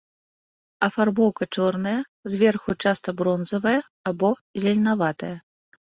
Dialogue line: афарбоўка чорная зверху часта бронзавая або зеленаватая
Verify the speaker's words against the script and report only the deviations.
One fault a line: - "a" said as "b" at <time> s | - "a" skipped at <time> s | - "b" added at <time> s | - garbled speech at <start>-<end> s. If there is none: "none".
none